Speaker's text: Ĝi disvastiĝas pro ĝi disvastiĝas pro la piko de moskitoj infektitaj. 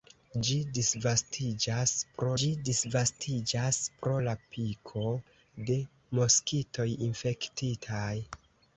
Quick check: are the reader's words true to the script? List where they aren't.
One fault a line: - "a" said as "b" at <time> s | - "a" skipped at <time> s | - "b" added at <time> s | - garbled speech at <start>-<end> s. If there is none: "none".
none